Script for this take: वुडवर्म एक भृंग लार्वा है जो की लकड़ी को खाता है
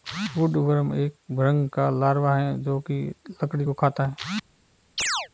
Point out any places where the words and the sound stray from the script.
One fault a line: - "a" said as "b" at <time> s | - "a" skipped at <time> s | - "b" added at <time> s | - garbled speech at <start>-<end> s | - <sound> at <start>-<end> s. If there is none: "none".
- "का" added at 1.7 s
- chirp at 5.0-5.3 s